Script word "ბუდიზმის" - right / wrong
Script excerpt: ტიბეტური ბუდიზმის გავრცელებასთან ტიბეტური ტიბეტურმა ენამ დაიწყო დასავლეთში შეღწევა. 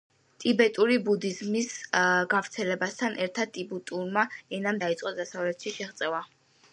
right